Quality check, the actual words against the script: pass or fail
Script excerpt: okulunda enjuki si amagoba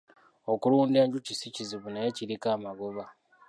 fail